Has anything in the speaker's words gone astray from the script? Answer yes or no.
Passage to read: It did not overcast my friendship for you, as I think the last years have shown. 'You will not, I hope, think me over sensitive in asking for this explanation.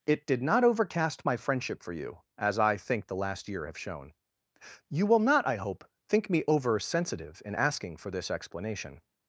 yes